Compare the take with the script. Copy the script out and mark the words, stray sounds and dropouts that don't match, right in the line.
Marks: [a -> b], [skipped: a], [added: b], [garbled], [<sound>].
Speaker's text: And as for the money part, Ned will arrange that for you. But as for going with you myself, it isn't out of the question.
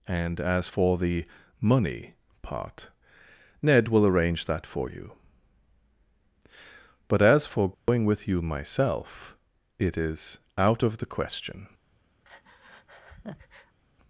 And as for the money part, Ned will arrange that for you. But as for going [dropout] with you myself, it [isn't -> is] out of the question. [breath]